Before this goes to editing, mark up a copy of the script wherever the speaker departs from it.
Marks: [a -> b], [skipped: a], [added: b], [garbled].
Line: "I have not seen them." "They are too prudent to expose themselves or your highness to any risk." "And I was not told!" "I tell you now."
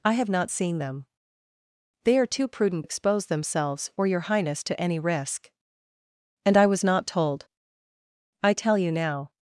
"I have not seen them." "They are too prudent [skipped: to] expose themselves or your highness to any risk." "And I was not told!" "I tell you now."